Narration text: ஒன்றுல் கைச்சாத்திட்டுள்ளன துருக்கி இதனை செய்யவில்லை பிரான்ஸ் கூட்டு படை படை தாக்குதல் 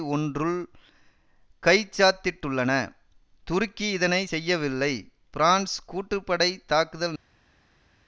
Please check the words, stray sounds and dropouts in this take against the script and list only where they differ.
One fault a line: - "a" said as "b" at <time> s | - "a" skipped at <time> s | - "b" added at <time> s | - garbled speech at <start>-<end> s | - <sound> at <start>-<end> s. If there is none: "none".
- "படை" skipped at 6.6 s